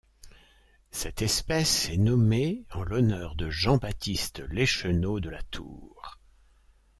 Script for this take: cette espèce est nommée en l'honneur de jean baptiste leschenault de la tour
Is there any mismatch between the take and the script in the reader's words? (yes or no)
no